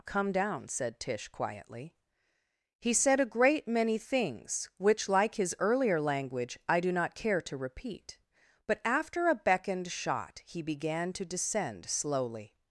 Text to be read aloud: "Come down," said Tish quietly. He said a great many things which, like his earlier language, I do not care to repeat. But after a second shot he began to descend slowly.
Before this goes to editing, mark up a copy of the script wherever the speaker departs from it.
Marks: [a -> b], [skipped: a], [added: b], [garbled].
"Come down," said Tish quietly. He said a great many things which, like his earlier language, I do not care to repeat. But after a [second -> beckoned] shot he began to descend slowly.